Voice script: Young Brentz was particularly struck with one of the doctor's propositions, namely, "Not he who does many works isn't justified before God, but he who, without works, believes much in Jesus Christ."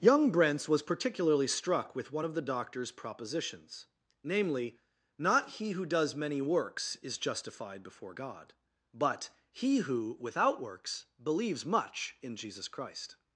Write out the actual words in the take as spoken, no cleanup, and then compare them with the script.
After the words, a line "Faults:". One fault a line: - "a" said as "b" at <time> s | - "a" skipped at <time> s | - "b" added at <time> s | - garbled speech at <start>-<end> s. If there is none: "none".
Young Brentz was particularly struck with one of the doctor's propositions, namely, "Not he who does many works is justified before God, but he who, without works, believes much in Jesus Christ."
Faults:
- "isn't" said as "is" at 7.0 s